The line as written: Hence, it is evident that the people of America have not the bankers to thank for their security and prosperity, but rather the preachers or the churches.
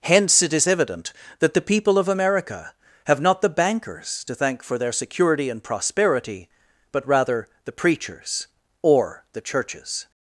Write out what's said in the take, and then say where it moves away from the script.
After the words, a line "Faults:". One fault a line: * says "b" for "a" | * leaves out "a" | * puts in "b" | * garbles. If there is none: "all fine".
Hence, it is evident that the people of America have not the bankers to thank for their security and prosperity, but rather the preachers or the churches.
Faults:
all fine